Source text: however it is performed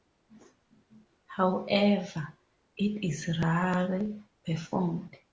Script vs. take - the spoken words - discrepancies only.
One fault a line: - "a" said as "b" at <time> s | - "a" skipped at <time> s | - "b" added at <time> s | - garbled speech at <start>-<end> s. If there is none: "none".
- "rarely" added at 3.4 s